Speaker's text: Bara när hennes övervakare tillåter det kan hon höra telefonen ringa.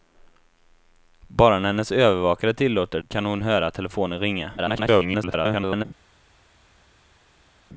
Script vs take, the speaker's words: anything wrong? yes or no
yes